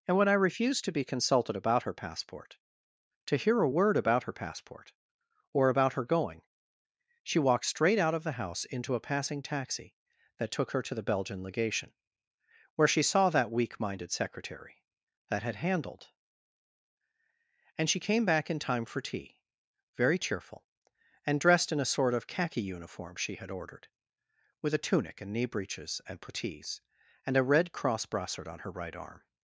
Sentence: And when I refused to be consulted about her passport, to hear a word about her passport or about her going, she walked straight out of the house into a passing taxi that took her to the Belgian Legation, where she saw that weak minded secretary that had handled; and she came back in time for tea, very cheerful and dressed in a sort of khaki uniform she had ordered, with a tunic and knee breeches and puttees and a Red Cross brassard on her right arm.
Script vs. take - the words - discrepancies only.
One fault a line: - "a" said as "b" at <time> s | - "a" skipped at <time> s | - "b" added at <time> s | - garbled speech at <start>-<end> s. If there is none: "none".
none